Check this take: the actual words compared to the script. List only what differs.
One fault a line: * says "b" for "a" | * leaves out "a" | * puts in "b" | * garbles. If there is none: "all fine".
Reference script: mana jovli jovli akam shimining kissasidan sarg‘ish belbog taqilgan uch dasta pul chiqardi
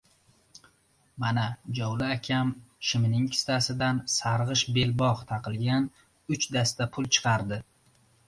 * leaves out "jovli"